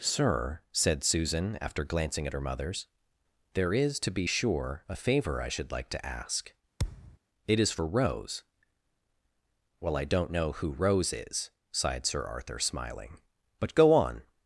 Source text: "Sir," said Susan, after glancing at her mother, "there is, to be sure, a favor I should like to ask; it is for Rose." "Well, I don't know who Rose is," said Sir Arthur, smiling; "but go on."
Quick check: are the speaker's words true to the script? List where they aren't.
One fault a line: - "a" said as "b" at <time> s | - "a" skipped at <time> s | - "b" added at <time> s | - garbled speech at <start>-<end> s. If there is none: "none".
- "mother" said as "mothers" at 2.4 s
- "said" said as "sighed" at 11.7 s